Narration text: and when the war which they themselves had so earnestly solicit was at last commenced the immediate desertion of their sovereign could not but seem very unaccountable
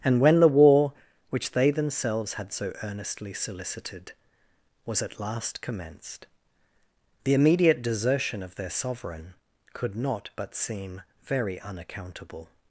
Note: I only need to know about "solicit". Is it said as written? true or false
false